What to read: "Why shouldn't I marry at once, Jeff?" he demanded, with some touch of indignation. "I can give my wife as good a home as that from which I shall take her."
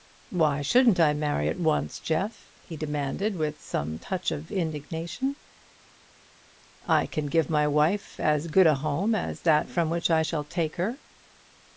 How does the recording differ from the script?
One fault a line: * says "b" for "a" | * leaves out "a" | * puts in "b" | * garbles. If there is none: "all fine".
all fine